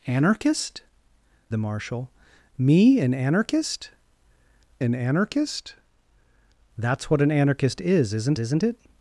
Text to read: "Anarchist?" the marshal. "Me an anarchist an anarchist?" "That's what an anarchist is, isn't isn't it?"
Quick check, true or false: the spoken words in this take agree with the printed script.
true